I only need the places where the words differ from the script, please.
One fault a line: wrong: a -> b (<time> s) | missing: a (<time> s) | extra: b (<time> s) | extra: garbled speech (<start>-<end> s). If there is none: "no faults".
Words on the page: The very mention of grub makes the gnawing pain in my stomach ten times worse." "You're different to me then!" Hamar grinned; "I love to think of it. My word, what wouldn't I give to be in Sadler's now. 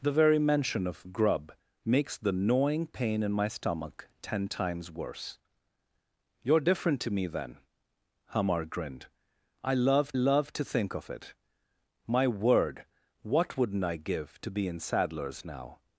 extra: love (10.1 s)